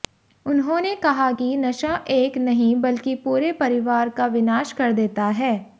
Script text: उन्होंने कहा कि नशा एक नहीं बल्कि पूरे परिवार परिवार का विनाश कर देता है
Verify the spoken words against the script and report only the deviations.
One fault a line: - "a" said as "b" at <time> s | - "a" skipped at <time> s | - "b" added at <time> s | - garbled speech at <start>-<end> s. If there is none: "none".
- "परिवार" skipped at 4.1 s